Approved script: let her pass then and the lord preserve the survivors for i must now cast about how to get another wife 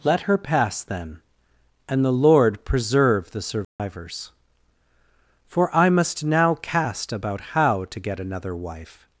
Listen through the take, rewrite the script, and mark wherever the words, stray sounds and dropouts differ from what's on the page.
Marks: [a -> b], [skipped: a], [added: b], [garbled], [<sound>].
let her pass then and the lord preserve the survivors [dropout] for i must now cast about how to get another wife